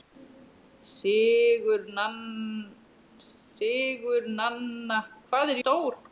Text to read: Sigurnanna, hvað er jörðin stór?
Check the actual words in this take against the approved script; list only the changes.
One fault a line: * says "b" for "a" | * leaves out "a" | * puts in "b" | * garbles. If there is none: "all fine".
* leaves out "jörðin"